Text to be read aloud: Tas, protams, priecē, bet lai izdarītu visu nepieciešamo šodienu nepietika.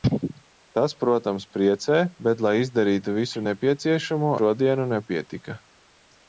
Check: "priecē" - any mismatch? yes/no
no